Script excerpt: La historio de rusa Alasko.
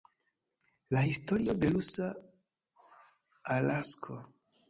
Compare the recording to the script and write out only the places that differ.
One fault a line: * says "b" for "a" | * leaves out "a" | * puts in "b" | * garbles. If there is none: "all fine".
all fine